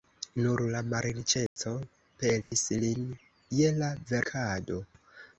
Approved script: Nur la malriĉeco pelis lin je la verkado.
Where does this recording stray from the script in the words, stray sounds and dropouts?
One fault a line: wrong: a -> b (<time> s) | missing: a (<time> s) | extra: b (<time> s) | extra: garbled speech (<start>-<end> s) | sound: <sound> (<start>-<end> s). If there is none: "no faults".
sound: dropout (1.5-1.6 s)
sound: dropout (2.4-2.5 s)